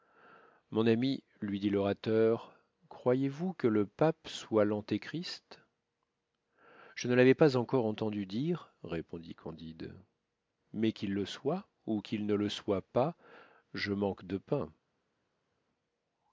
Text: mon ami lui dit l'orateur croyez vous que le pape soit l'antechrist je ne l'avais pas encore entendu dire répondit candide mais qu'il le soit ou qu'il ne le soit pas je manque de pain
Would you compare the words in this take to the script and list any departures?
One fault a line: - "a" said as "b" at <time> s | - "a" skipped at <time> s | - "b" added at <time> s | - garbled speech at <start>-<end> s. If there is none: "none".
none